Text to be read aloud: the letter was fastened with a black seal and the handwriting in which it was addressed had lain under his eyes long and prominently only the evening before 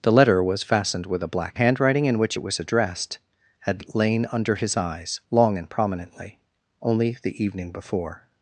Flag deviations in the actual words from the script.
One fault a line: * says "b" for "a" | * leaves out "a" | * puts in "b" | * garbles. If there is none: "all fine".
* leaves out "seal and the"